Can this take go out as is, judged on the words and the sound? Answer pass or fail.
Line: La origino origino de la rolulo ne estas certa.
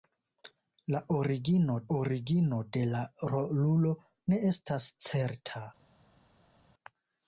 pass